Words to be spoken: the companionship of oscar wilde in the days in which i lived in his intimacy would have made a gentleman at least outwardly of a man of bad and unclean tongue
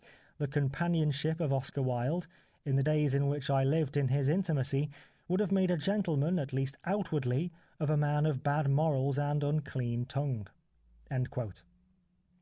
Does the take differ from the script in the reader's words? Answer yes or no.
yes